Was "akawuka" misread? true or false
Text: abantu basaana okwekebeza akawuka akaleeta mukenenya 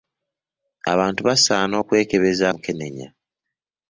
true